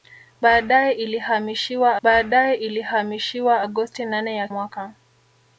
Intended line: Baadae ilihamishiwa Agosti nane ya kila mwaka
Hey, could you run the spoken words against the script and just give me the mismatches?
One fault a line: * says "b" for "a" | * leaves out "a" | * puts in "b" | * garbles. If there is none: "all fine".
* puts in "baadae ilihamishiwa"
* leaves out "kila"